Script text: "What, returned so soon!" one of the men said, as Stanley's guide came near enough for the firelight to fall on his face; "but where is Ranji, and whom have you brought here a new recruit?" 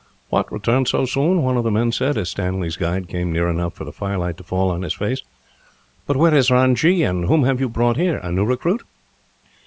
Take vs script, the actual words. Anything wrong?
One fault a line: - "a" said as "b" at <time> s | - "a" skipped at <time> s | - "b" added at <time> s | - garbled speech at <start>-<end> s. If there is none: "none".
none